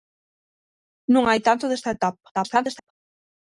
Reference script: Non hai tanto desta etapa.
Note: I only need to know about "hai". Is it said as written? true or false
true